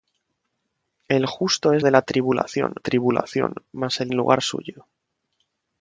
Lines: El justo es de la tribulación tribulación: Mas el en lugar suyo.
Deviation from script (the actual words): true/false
false